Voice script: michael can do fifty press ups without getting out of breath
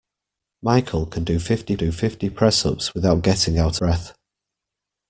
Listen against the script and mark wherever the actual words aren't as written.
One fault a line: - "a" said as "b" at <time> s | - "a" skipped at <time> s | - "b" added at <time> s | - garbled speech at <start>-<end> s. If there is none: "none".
- "do fifty" added at 1.8 s
- "of" skipped at 3.8 s